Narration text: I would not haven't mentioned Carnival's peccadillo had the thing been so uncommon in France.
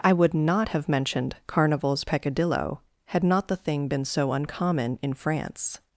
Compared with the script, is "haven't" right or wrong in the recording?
wrong